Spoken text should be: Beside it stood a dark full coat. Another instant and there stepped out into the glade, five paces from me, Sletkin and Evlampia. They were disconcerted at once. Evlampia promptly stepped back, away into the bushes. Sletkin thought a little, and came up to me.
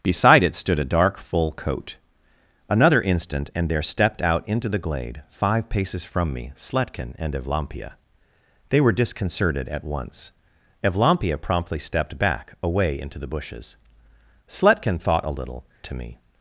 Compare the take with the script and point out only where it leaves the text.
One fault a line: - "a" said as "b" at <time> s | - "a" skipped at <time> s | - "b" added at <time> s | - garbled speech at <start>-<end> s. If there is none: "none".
- "and came up" skipped at 15.7 s